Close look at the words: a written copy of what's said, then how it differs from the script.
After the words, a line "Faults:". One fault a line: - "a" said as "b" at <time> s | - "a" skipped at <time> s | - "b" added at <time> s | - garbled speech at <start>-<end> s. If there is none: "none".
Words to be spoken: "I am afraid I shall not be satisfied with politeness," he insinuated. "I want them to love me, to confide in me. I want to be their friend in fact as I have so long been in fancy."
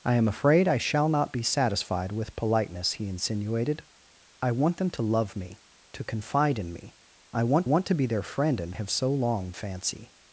"I am afraid I shall not be satisfied with politeness," he insinuated. "I want them to love me, to confide in me. I want want to be their friend in have so long fancy."
Faults:
- "want" added at 7.6 s
- "fact as I" skipped at 8.7 s
- "been in" skipped at 9.5 s